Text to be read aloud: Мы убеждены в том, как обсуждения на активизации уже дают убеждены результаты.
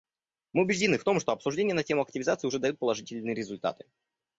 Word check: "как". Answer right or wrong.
wrong